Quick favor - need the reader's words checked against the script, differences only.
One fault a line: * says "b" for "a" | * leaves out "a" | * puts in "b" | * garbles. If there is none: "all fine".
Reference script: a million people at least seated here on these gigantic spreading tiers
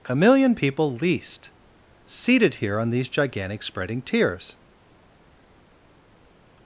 * leaves out "at"